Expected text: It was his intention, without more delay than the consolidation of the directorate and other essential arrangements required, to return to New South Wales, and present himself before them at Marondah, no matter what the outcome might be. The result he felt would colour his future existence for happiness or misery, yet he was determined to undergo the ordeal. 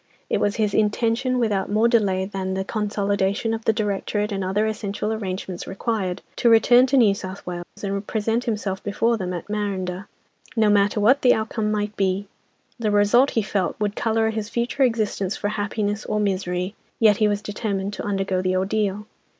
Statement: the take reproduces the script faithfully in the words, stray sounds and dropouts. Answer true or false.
false